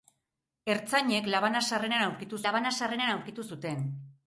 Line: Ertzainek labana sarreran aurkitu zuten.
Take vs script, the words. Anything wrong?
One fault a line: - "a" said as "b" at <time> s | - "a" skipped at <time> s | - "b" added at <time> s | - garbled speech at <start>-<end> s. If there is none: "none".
- "labana sarreran aurkitu" added at 2.5 s